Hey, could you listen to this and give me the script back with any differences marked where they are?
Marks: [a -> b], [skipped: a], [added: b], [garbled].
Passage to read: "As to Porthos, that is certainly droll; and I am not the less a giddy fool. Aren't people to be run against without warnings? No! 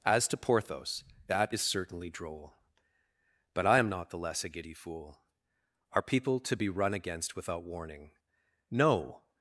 "As to Porthos, that is certainly droll; [and -> but] I am not the less a giddy fool. [Aren't -> Are] people to be run against without [warnings? -> warning] No!